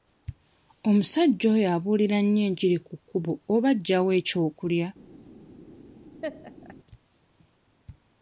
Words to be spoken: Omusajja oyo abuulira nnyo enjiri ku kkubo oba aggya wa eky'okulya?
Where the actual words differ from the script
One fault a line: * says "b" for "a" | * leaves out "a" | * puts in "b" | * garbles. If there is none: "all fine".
all fine